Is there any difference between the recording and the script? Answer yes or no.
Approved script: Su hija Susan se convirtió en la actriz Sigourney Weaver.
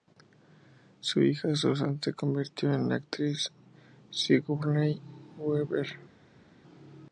no